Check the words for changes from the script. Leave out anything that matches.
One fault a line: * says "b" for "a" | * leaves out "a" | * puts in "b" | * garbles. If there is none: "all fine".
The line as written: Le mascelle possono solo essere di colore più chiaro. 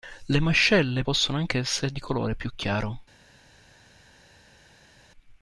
* says "anche" for "solo"